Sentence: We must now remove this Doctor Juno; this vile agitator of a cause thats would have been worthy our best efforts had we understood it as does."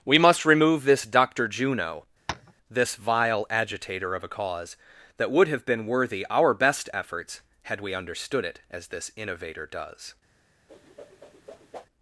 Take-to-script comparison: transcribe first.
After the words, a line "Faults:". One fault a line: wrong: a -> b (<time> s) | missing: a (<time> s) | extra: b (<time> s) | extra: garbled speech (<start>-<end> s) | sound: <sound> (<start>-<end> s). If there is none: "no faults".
We must remove this Doctor Juno; this vile agitator of a cause that would have been worthy our best efforts had we understood it as this innovator does."
Faults:
missing: now (0.5 s)
sound: tap (2.3-2.5 s)
wrong: thats -> that (5.1 s)
extra: this innovator (8.9 s)
sound: whoosh (10.7-11.9 s)